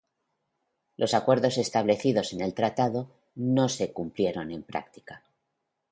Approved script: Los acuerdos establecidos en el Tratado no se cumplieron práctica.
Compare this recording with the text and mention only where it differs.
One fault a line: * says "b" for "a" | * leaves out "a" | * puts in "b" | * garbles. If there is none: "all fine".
* puts in "en"